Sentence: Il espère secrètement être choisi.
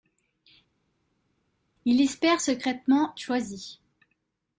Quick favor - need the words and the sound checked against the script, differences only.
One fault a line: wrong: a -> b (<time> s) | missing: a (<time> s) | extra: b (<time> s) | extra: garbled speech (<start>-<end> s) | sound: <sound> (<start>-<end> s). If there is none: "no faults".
missing: être (3.2 s)